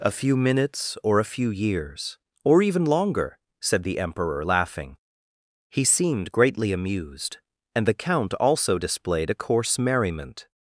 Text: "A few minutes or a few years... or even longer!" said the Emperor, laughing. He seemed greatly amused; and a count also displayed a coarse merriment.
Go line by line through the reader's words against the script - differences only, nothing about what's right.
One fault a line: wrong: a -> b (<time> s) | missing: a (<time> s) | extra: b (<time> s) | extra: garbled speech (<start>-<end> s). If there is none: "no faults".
wrong: a -> the (7.8 s)